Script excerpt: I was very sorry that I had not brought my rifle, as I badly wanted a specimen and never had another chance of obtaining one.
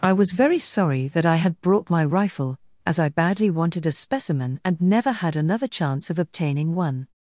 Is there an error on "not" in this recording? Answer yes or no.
yes